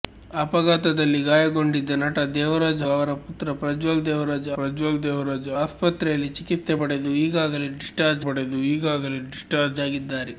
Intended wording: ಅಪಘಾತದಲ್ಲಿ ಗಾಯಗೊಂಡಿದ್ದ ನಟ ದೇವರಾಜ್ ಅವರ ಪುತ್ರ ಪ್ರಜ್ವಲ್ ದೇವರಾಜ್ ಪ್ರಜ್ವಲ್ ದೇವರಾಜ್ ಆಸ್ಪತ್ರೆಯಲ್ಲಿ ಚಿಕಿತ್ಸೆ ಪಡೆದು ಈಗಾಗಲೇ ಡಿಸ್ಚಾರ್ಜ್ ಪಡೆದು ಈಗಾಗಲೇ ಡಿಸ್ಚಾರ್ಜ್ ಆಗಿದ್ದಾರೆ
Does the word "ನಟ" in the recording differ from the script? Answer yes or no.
no